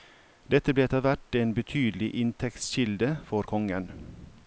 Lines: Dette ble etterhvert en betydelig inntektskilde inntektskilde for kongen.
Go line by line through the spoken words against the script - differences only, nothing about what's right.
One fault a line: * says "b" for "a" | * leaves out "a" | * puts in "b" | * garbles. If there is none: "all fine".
* leaves out "inntektskilde"